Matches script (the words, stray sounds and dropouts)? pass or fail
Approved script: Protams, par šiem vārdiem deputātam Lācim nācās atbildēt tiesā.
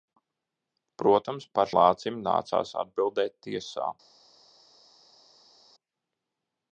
fail